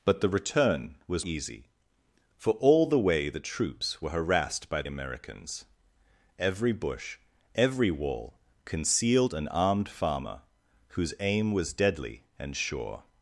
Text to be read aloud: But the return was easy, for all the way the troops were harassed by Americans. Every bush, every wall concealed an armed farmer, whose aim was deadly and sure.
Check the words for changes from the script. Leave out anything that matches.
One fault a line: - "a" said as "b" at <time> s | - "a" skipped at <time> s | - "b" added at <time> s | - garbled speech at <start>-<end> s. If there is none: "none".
none